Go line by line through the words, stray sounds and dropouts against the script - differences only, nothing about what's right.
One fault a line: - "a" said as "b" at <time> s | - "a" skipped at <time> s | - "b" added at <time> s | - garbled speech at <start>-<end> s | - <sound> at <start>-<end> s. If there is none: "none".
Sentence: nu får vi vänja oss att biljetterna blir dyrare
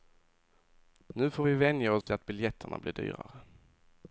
- dropout at 2.0-2.1 s